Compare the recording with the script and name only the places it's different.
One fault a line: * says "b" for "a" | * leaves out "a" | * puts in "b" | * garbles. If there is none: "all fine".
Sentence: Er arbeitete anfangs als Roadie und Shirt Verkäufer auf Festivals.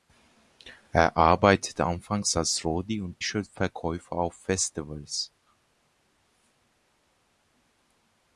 all fine